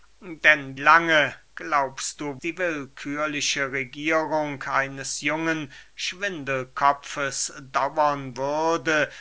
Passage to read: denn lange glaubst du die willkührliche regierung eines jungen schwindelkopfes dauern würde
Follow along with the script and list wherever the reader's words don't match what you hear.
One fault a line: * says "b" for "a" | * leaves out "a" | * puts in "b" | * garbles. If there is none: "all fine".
all fine